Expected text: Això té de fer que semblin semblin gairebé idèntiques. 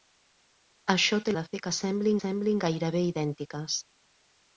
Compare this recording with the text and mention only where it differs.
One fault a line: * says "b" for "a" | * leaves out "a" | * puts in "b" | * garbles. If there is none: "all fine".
all fine